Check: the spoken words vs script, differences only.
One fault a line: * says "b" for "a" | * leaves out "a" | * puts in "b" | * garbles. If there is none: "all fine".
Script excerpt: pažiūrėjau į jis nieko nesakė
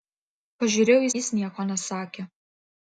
all fine